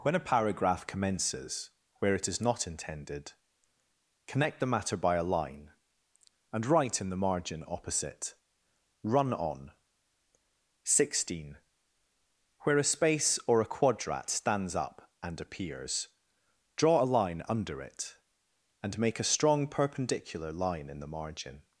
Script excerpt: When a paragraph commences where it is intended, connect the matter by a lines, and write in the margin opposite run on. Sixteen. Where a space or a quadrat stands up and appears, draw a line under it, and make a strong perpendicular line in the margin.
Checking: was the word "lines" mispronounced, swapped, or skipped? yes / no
yes